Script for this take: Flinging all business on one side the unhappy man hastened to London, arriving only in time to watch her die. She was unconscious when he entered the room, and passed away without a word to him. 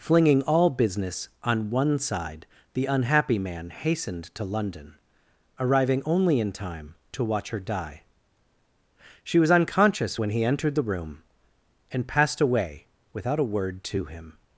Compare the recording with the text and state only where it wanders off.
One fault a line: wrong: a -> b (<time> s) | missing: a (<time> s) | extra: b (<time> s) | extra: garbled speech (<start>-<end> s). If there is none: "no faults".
no faults